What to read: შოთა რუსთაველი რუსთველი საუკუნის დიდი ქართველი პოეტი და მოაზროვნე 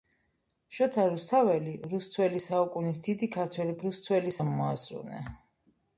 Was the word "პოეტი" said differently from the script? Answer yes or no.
yes